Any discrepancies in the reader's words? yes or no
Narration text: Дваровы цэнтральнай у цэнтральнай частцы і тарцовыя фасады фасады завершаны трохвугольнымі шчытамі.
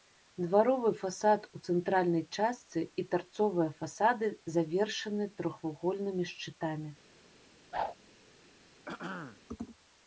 yes